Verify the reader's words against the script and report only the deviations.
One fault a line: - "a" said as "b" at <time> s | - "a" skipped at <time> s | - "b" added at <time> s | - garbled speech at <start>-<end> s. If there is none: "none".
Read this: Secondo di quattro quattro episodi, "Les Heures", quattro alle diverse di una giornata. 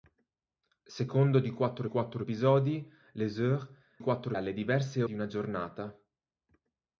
none